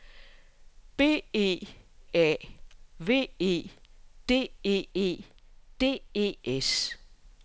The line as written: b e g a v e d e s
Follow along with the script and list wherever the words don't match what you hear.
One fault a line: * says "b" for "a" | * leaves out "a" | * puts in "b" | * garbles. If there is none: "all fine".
* leaves out "g"
* puts in "e d e"